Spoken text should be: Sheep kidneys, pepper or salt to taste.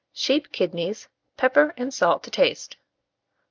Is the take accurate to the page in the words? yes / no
no